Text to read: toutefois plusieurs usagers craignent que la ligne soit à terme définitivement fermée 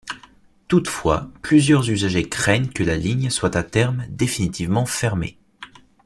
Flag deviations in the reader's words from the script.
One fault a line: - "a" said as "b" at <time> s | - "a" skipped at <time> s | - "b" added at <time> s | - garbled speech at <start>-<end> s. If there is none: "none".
none